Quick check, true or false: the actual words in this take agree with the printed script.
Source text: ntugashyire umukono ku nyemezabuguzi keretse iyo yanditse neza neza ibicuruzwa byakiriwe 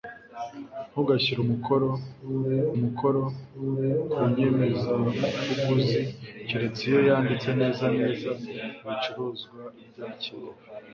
false